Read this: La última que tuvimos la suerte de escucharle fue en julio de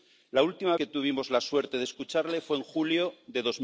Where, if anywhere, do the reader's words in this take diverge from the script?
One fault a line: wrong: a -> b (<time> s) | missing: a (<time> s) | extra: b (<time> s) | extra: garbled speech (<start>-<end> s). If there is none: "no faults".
no faults